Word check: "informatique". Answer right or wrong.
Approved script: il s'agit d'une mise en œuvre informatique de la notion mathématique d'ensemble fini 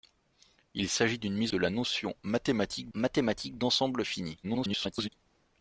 wrong